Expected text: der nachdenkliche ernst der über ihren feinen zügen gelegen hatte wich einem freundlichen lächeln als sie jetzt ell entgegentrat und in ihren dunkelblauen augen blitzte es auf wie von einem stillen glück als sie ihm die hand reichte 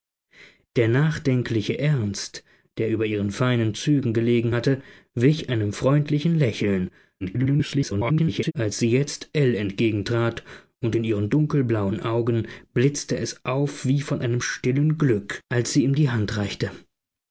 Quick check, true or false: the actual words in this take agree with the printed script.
false